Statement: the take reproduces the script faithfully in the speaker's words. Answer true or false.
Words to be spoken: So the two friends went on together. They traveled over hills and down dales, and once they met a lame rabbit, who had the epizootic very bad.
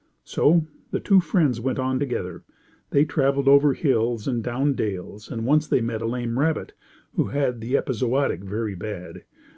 true